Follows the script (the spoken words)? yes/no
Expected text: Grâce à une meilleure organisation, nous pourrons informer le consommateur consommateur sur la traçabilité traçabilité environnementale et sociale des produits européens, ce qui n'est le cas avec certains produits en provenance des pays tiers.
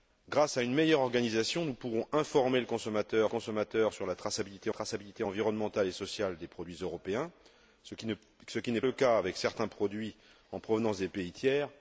yes